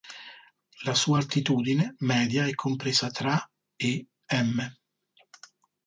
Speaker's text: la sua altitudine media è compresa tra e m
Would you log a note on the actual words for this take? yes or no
no